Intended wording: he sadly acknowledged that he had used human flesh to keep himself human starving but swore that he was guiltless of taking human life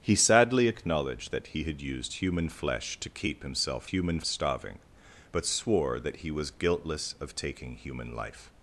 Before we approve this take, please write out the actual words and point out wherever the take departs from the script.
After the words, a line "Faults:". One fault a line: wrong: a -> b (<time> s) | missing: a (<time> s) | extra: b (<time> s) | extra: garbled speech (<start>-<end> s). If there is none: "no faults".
he sadly acknowledged that he had used human flesh to keep himself human starving but swore that he was guiltless of taking human life
Faults:
no faults